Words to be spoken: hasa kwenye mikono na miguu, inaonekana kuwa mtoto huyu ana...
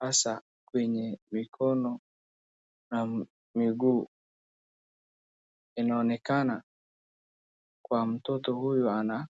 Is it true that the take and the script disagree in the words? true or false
false